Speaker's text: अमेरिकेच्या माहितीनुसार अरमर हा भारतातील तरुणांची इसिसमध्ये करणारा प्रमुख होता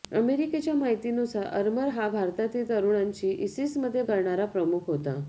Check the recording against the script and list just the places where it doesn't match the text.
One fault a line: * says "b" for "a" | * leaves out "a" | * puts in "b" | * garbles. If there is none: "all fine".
all fine